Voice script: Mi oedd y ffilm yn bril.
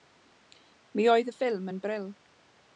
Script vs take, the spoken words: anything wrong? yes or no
no